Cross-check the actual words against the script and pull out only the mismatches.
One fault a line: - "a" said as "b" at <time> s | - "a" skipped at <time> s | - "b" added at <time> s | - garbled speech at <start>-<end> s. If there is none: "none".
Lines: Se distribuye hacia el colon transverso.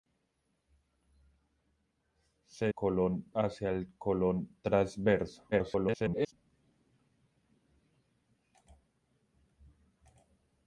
- "distribuye" said as "colon" at 2.7 s
- garbled speech at 5.5-6.3 s